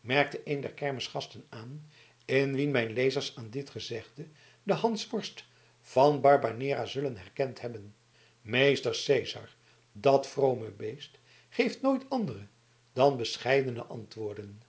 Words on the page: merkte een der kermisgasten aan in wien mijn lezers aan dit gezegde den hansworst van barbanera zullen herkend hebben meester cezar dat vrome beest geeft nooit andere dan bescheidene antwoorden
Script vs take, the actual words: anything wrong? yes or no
no